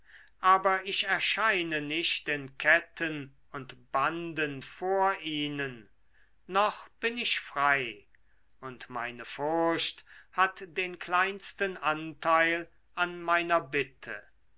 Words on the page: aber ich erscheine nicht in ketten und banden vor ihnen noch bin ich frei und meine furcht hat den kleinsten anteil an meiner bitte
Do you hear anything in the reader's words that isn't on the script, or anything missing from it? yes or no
no